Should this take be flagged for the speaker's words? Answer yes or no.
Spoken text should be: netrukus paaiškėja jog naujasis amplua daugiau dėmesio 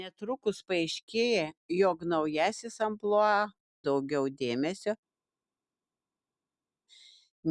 no